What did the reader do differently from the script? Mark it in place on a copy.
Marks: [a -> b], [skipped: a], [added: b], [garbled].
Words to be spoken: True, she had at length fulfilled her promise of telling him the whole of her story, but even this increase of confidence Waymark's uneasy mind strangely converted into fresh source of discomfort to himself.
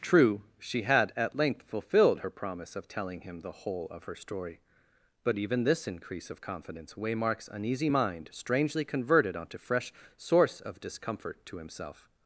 True, she had at length fulfilled her promise of telling him the whole of her story, but even this increase of confidence Waymark's uneasy mind strangely converted [into -> onto] fresh source of discomfort to himself.